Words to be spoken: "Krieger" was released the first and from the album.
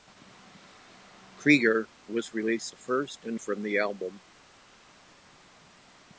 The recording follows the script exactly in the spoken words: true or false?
true